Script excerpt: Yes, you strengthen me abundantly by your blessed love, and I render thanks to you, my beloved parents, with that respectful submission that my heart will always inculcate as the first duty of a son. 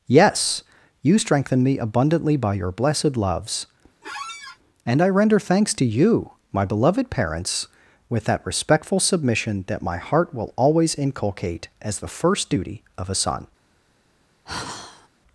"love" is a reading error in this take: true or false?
true